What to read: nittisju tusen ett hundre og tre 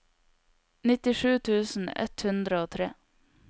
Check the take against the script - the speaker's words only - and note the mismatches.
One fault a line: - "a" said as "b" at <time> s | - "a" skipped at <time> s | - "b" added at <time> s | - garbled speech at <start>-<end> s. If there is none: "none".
none